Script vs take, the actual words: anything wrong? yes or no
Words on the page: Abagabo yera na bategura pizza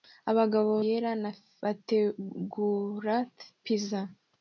no